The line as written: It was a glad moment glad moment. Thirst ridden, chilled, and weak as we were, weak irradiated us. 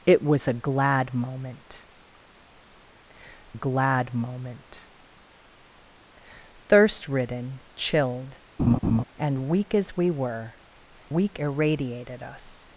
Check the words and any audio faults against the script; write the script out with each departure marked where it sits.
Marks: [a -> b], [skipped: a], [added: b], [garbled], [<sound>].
It was a glad moment glad moment. Thirst ridden, chilled, [laugh] and weak as we were, weak irradiated us.